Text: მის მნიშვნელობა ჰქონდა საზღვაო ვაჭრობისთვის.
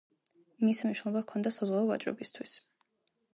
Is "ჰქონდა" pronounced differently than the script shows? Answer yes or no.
no